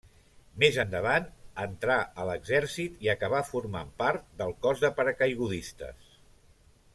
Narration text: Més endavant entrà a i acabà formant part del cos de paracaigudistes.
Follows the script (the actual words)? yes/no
no